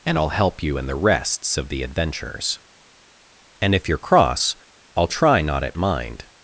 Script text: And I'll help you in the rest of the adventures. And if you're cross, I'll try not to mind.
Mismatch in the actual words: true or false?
true